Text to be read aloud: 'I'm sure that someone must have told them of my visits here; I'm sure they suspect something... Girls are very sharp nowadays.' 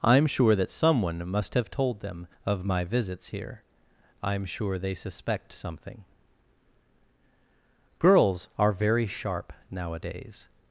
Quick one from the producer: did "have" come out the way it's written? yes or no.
yes